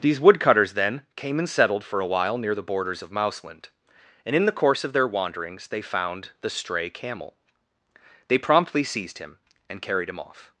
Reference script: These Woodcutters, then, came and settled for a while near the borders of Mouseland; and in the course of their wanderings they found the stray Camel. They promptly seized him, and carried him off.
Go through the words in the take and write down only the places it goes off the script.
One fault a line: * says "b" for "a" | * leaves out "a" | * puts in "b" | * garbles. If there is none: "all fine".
all fine